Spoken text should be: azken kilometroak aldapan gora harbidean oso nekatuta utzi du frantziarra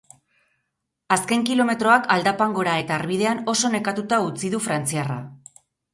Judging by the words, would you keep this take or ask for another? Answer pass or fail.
fail